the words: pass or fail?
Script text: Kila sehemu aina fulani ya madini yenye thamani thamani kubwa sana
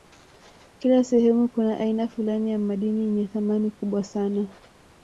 fail